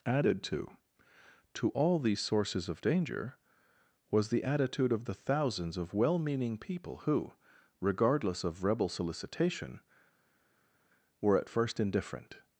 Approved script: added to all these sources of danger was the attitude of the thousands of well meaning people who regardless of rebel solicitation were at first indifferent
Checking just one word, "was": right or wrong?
right